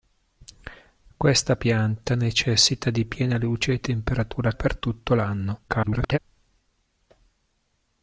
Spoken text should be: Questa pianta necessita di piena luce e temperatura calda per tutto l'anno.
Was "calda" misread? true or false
true